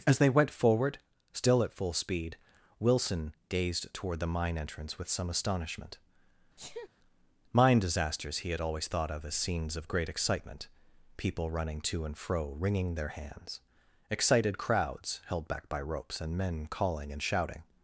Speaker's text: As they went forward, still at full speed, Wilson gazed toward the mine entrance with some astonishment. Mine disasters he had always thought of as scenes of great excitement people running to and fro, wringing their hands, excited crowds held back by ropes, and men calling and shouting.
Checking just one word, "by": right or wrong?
right